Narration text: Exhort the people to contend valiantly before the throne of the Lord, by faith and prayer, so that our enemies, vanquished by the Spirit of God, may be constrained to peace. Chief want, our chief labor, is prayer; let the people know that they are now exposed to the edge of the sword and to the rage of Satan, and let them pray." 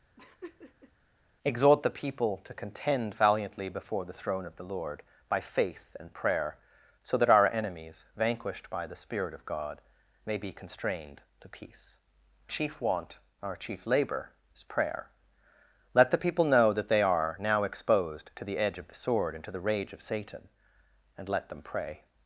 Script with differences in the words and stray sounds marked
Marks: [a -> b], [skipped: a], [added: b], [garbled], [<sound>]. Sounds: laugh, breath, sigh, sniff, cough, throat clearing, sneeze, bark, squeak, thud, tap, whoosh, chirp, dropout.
[laugh] Exhort the people to contend valiantly before the throne of the Lord, by faith and prayer, so that our enemies, vanquished by the Spirit of God, may be constrained to peace. Chief want, our chief labor, is prayer; let the people know that they are now exposed to the edge of the sword and to the rage of Satan, and let them pray."